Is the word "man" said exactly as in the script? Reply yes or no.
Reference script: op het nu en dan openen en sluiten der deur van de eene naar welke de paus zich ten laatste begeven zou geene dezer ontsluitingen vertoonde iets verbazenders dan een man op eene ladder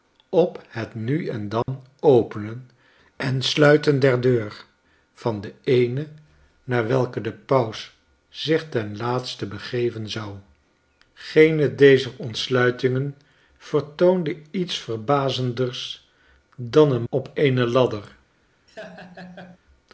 no